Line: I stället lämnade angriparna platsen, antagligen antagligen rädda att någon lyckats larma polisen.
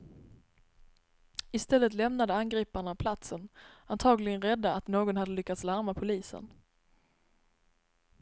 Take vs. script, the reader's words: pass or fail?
fail